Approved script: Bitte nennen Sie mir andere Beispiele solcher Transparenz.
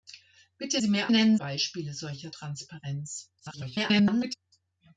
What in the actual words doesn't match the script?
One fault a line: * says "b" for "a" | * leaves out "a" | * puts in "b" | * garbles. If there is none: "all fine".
* leaves out "nennen"
* says "nennen" for "andere"
* garbles